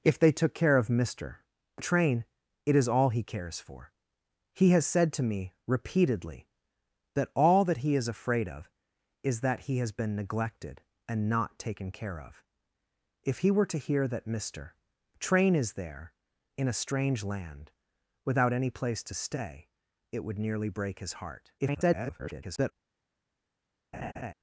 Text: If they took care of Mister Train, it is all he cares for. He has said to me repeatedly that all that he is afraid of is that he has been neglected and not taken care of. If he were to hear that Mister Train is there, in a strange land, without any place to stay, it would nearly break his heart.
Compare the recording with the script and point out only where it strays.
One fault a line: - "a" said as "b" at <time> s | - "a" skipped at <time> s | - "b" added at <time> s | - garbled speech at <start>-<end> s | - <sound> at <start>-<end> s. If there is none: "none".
- garbled speech at 21.6-22.7 s
- laugh at 23.9-24.3 s